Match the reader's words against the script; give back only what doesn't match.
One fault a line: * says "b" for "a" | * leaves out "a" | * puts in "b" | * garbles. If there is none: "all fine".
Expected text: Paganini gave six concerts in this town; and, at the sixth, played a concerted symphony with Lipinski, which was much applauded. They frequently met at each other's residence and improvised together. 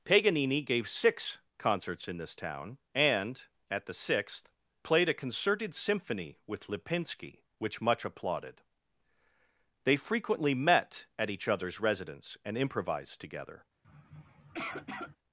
* leaves out "was"